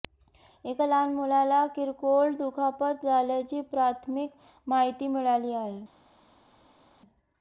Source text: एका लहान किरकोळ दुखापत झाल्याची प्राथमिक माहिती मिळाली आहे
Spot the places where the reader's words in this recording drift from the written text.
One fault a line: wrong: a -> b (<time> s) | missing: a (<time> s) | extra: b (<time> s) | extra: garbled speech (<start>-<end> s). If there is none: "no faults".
extra: मुलाला (1.1 s)